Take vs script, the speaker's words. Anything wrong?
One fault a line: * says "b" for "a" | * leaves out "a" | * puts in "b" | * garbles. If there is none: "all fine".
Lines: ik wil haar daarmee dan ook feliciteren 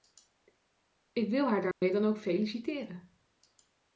all fine